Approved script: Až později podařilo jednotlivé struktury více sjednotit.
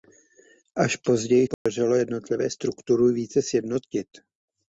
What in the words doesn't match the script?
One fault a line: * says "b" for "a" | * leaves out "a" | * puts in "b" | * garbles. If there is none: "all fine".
all fine